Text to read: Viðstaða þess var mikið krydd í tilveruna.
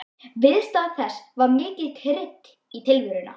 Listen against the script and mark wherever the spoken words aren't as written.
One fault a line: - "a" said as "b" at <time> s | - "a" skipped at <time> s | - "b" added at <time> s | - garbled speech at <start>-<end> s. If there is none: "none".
none